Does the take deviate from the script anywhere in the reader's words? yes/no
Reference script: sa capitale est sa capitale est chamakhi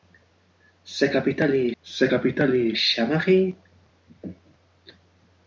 no